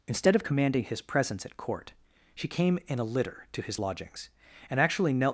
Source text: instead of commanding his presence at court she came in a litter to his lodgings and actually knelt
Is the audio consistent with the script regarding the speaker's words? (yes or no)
yes